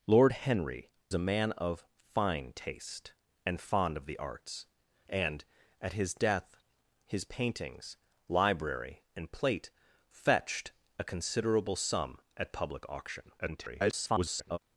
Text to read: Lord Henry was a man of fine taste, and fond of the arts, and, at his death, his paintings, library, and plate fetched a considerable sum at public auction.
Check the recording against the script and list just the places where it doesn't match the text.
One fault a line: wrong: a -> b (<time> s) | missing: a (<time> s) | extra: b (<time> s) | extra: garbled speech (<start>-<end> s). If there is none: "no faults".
missing: was (0.9 s)
extra: garbled speech (13.4-14.6 s)